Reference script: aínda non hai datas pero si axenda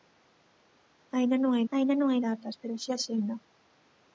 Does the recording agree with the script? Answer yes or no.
no